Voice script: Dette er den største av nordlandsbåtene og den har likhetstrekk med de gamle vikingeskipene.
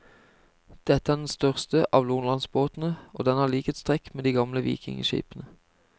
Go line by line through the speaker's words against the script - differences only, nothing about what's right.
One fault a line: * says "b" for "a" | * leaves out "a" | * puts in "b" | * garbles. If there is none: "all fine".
all fine